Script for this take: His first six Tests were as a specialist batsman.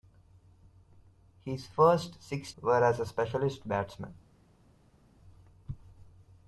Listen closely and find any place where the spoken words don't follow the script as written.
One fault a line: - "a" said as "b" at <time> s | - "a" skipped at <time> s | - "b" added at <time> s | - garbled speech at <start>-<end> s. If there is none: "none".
- "Tests" skipped at 2.5 s